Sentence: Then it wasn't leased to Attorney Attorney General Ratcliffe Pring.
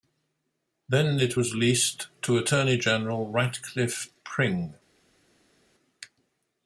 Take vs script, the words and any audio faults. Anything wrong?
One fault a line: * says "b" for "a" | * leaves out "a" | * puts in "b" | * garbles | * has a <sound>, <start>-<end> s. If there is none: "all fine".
* says "was" for "wasn't"
* leaves out "Attorney"